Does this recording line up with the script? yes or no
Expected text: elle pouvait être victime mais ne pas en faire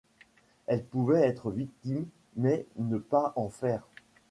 yes